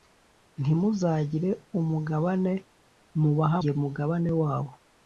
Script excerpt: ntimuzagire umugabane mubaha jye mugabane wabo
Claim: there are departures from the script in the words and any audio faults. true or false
false